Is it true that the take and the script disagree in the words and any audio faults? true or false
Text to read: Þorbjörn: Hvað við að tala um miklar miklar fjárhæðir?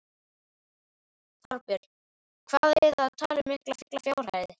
false